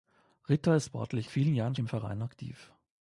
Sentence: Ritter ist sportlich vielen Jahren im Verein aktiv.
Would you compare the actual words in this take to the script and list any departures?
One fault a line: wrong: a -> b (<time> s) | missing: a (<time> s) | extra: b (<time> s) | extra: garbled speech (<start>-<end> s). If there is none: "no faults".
no faults